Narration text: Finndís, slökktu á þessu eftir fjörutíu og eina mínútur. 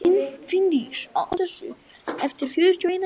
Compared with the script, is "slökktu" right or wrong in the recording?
wrong